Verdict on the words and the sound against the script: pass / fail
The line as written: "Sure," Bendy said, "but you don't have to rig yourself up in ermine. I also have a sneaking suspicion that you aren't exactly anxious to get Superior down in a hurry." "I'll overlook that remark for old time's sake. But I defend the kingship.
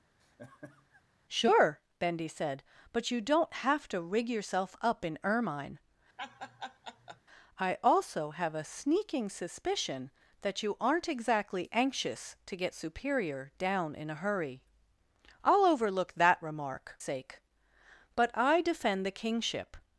fail